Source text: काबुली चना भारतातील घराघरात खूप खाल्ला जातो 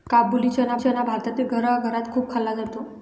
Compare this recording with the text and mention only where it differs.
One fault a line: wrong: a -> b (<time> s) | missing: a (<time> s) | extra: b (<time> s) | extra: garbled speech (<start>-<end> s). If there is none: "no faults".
extra: चना (0.8 s)